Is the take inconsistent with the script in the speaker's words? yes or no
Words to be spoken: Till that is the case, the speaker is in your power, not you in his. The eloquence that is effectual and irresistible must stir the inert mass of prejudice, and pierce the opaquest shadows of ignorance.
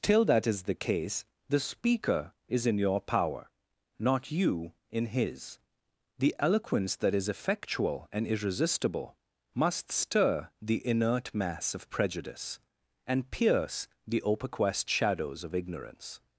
no